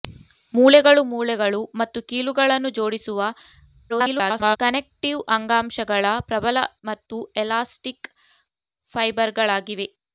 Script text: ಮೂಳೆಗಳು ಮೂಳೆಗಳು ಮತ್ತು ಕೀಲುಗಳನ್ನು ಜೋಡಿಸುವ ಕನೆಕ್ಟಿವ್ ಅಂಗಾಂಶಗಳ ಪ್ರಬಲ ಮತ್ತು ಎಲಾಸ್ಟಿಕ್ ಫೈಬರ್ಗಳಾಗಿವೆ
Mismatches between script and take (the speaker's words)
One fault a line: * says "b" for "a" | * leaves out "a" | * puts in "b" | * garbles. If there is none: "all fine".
* garbles